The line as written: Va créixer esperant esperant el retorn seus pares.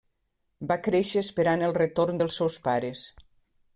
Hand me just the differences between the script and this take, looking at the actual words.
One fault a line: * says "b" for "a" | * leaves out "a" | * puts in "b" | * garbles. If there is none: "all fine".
* leaves out "esperant"
* puts in "dels"